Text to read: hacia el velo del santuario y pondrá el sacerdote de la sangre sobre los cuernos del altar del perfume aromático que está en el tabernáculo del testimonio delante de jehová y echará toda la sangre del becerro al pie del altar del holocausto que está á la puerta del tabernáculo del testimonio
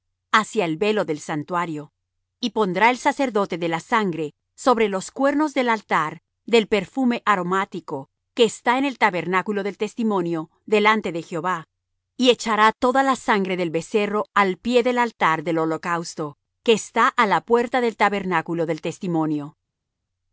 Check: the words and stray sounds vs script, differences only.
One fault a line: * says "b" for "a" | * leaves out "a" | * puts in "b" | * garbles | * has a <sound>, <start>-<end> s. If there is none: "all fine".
all fine